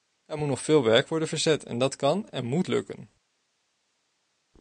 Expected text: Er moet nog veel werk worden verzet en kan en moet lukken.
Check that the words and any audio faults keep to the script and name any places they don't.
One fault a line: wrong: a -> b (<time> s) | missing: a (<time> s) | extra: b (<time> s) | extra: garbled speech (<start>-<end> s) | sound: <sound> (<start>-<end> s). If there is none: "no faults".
extra: dat (1.8 s)